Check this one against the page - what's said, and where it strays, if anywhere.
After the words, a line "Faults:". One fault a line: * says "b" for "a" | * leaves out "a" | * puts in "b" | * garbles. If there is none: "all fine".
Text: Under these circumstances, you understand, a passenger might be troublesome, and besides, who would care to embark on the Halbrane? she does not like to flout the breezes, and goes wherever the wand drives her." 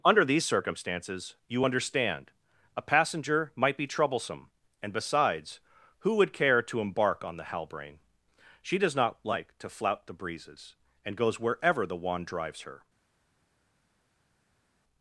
Under these circumstances, you understand, a passenger might be troublesome, and besides, who would care to embark on the Halbrane? she does not like to flout the breezes, and goes wherever the wand drives her."
Faults:
all fine